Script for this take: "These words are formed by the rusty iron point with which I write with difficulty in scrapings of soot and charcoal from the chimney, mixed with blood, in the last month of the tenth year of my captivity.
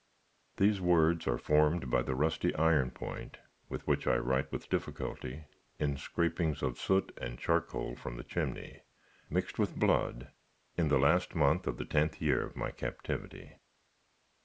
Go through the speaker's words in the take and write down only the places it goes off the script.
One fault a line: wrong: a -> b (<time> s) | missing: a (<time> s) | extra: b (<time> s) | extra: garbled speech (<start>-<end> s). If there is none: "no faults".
no faults